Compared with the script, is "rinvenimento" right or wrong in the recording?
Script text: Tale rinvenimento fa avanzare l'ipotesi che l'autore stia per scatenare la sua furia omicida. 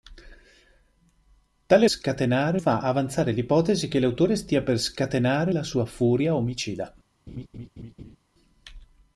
wrong